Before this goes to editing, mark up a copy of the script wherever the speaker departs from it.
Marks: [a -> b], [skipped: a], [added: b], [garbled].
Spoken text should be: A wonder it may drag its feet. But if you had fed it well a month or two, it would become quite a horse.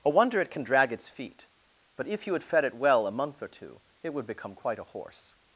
A wonder it [may -> can] drag its feet. But if you had fed it well a month or two, it would become quite a horse.